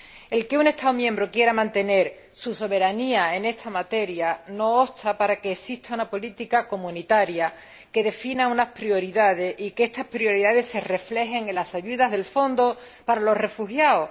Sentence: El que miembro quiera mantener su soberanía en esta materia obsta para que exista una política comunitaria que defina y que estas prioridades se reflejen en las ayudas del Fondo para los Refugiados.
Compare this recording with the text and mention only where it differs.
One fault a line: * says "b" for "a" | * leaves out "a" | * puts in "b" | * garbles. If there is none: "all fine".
* puts in "un Estado"
* puts in "no"
* puts in "unas prioridades"